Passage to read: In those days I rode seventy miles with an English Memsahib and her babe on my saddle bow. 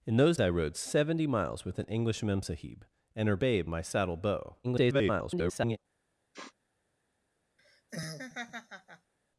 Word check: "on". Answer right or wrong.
wrong